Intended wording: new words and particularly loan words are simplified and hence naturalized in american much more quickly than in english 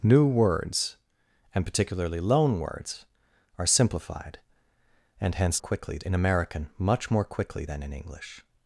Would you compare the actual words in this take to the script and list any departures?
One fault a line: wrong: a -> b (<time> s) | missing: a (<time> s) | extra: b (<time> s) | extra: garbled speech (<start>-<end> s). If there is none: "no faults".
wrong: naturalized -> quickly (5.6 s)